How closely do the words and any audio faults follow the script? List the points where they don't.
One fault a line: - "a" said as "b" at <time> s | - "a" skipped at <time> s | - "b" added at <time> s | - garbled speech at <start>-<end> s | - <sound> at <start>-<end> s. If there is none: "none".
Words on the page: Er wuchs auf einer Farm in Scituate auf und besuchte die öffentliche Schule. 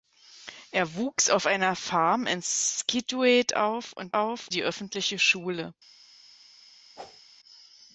- "besuchte" said as "auf" at 4.2 s
- whoosh at 7.0-7.2 s